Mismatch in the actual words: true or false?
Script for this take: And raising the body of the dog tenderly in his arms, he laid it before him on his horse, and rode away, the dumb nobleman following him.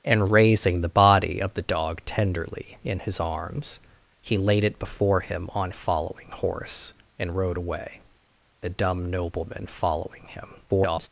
true